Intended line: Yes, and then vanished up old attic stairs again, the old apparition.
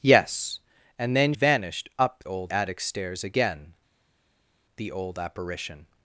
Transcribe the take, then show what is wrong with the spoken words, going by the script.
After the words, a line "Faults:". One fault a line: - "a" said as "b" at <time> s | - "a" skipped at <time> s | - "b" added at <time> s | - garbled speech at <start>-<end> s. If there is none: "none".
Yes, and then vanished up old attic stairs again, the old apparition.
Faults:
none